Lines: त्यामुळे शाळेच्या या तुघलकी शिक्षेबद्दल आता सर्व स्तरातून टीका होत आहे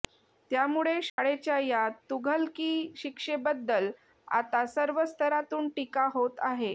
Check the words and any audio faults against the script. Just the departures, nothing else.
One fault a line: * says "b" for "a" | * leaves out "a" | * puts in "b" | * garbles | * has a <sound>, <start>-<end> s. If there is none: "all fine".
* has a dropout, 1.1-1.2 s